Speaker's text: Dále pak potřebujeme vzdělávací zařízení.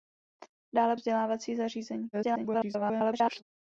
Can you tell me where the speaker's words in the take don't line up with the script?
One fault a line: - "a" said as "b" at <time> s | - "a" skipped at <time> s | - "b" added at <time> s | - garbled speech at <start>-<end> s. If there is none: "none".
- "pak potřebujeme" skipped at 1.0 s
- garbled speech at 2.1-3.4 s